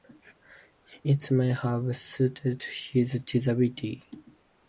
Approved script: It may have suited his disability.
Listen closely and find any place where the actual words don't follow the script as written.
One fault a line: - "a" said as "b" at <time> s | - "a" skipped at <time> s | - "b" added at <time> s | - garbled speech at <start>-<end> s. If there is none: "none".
none